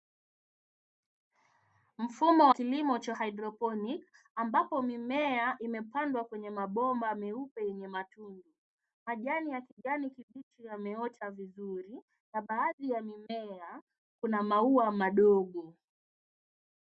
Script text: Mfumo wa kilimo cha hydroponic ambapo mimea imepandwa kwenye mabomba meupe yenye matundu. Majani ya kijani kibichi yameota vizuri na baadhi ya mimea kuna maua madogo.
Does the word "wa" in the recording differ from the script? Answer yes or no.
yes